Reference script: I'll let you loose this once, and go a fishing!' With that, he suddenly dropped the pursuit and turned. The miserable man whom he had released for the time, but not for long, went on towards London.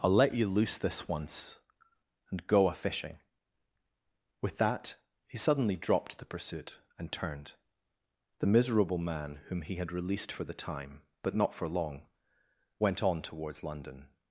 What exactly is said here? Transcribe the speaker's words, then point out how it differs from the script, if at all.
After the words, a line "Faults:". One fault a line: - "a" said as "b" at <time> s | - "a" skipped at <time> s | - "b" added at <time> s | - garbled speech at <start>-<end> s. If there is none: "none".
I'll let you loose this once, and go a fishing!' With that, he suddenly dropped the pursuit and turned. The miserable man whom he had released for the time, but not for long, went on towards London.
Faults:
none